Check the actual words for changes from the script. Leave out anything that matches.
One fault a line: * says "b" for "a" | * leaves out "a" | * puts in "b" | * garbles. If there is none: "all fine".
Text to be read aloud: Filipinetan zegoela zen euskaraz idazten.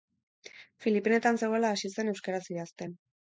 * puts in "hasi"